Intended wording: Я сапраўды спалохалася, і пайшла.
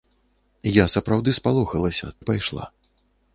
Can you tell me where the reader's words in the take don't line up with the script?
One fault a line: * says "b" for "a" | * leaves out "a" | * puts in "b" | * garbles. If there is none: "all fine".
all fine